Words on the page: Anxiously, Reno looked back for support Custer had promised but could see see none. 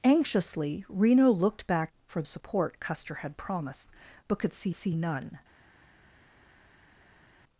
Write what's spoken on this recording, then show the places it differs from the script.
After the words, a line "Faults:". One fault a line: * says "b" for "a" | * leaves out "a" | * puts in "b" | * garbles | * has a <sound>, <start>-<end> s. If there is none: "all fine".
Anxiously, Reno looked back for support Custer had promised but could see see none.
Faults:
all fine